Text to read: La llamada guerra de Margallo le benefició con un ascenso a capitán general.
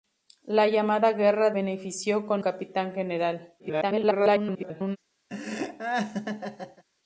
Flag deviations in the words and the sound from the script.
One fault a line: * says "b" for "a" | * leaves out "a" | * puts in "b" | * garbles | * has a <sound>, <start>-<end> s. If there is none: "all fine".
* leaves out "de Margallo le"
* leaves out "un ascenso a"
* garbles
* has a laugh, 5.3-6.8 s